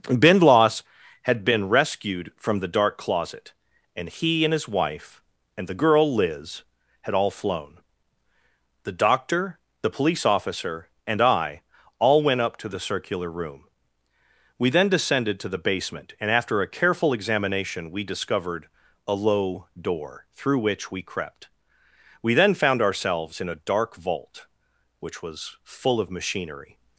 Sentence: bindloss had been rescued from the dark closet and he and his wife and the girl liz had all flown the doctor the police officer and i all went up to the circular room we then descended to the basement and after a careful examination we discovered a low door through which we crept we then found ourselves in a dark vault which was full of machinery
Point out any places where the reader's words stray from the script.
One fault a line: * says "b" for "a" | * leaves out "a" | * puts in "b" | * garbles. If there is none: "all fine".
all fine